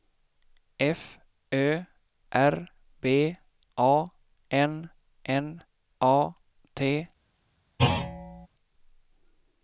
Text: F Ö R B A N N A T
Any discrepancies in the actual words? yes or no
no